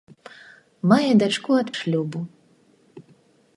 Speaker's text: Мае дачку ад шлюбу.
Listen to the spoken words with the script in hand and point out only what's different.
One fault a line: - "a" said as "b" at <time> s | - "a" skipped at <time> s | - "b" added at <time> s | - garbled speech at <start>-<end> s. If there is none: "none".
none